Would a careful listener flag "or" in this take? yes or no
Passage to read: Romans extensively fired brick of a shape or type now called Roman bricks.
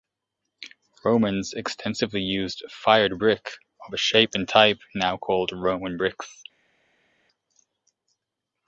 yes